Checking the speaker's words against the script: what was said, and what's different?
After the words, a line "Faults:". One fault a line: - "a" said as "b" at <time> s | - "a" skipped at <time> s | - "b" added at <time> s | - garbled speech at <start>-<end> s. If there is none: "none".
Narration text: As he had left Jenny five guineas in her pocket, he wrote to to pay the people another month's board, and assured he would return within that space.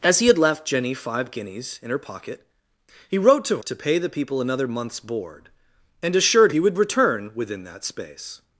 As he had left Jenny five guineas in her pocket, he wrote to to pay the people another month's board, and assured he would return within that space.
Faults:
none